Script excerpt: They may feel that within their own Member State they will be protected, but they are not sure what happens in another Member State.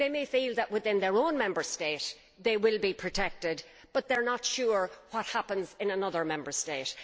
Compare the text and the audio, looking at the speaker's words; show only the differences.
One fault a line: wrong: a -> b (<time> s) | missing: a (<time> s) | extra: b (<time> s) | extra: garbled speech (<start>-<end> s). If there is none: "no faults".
no faults